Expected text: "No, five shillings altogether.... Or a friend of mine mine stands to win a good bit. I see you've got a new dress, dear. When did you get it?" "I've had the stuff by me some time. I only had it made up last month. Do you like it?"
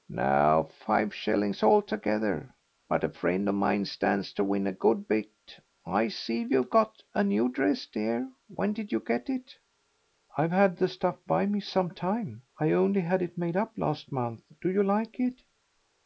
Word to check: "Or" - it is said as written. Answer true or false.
false